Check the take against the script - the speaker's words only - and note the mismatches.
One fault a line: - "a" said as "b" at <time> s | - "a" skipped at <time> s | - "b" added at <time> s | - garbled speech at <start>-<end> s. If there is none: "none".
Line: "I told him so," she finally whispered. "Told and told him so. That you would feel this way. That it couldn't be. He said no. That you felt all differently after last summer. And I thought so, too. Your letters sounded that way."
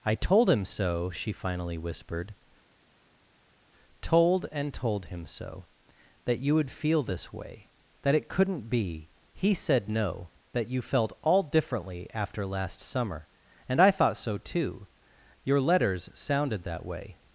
none